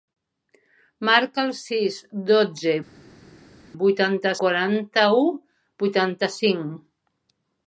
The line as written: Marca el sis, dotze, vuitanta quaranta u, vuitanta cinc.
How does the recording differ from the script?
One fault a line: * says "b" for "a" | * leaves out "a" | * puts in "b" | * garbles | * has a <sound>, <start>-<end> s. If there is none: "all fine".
all fine